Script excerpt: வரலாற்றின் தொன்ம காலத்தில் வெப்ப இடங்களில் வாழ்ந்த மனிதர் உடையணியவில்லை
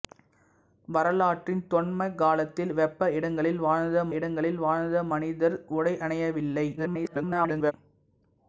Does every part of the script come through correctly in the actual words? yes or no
no